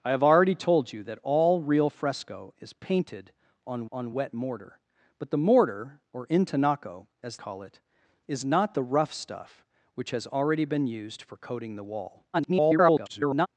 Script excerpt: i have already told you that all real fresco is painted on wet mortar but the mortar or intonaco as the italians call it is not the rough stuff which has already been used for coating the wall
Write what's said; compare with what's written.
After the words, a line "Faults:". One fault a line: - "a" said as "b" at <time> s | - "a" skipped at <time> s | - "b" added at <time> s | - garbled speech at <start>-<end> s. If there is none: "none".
i have already told you that all real fresco is painted on on wet mortar but the mortar or intonaco as call it is not the rough stuff which has already been used for coating the wall [garbled]
Faults:
- "on" added at 3.9 s
- "the italians" skipped at 7.4 s
- garbled speech at 12.3-13.5 s